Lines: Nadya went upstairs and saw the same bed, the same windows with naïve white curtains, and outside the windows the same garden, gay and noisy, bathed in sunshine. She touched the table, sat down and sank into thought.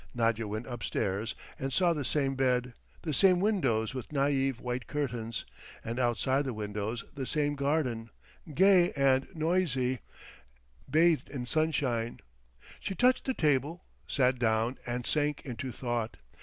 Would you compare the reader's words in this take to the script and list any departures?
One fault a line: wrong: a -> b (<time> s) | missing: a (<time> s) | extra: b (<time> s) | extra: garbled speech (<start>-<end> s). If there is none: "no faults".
no faults